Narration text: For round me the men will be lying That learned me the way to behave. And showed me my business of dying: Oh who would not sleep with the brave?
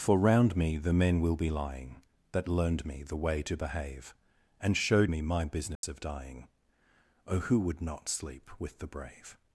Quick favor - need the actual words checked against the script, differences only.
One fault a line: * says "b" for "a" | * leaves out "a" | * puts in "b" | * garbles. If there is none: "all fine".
all fine